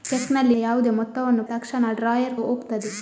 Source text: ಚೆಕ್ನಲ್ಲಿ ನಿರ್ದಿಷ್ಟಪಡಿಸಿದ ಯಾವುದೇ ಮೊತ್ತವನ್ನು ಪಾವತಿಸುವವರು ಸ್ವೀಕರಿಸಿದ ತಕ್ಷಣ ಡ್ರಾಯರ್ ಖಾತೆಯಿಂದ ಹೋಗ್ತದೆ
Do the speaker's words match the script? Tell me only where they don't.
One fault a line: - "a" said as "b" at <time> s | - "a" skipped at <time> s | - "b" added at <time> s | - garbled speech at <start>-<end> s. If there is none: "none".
- "ನಿರ್ದಿಷ್ಟಪಡಿಸಿದ" skipped at 0.6 s
- "ಪಾವತಿಸುವವರು ಸ್ವೀಕರಿಸಿದ" skipped at 1.4 s
- "ಖಾತೆಯಿಂದ" skipped at 2.4 s